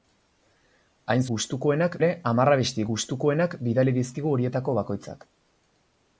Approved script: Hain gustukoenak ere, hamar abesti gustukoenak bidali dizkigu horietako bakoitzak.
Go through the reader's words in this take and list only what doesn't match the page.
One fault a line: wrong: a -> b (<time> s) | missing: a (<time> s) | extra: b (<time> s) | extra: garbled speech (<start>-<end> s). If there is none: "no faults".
no faults